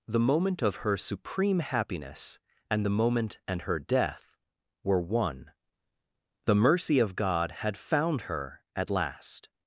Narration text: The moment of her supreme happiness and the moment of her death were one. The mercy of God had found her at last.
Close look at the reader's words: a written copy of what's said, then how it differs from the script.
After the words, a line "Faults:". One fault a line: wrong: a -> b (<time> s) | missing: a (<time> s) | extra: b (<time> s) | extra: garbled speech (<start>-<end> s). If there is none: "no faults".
The moment of her supreme happiness and the moment and her death were one. The mercy of God had found her at last.
Faults:
wrong: of -> and (3.5 s)